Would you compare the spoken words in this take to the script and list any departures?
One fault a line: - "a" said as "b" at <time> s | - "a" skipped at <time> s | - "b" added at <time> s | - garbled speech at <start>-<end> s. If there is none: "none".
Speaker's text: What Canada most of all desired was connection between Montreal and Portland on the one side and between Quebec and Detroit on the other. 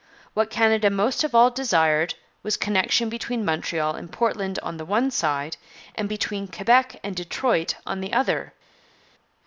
none